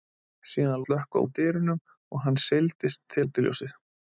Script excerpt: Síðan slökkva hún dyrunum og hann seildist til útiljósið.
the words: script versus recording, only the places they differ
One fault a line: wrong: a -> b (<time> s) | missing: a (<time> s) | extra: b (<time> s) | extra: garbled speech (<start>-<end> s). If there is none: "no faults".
no faults